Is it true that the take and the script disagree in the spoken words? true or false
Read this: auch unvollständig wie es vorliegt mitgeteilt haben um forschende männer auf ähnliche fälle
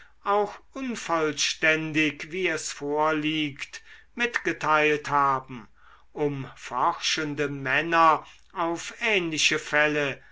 false